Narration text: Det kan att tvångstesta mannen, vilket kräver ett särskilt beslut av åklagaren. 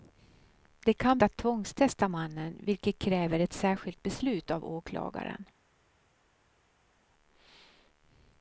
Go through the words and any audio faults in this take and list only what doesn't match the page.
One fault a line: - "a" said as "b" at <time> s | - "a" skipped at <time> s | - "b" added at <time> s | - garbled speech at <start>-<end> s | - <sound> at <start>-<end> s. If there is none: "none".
none